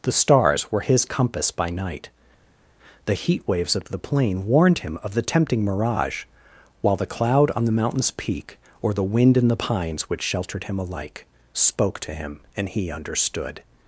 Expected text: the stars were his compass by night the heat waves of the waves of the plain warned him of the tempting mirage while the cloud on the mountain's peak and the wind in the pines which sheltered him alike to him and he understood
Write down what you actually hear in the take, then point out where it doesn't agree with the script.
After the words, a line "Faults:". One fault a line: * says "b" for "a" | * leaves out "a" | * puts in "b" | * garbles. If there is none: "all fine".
the stars were his compass by night the heat waves of the plain warned him of the tempting mirage while the cloud on the mountain's peak or the wind in the pines which sheltered him alike spoke to him and he understood
Faults:
* leaves out "waves of the"
* says "or" for "and"
* puts in "spoke"